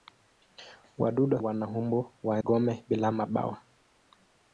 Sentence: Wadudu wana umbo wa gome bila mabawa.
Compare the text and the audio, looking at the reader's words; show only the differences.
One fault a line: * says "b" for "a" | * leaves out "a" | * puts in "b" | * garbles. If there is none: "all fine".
all fine